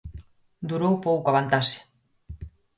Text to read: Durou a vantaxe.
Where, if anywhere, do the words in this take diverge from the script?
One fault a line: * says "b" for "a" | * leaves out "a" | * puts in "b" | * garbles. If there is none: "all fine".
* puts in "pouco"